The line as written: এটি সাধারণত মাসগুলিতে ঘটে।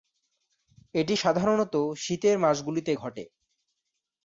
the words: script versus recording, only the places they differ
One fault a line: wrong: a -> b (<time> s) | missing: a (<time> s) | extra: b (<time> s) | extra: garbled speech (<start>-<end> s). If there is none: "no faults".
extra: শীতের (2.0 s)